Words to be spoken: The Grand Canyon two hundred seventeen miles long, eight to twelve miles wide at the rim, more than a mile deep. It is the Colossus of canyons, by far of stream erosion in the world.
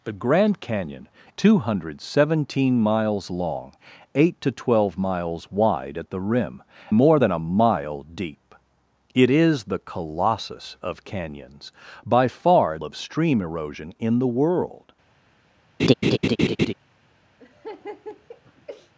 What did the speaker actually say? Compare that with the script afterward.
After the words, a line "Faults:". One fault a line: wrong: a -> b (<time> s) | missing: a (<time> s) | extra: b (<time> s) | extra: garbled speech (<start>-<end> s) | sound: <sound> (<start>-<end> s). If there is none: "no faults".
The Grand Canyon two hundred seventeen miles long, eight to twelve miles wide at the rim, more than a mile deep. It is the Colossus of canyons, by far of stream erosion in the world.
Faults:
sound: laugh (15.8-16.7 s)
sound: laugh (17.4-18.9 s)